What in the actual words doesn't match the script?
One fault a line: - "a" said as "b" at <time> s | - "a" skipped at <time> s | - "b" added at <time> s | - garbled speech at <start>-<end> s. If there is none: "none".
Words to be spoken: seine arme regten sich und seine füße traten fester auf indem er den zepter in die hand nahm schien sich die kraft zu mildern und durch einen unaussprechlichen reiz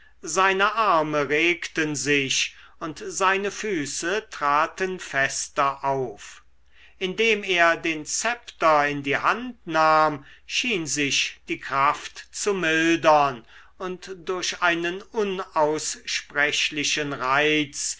none